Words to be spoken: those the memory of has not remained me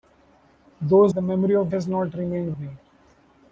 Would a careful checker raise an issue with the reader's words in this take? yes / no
no